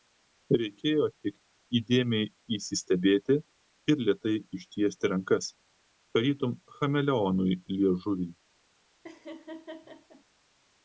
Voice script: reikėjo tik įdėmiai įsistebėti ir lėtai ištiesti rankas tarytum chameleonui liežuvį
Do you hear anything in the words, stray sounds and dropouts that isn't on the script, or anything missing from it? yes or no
yes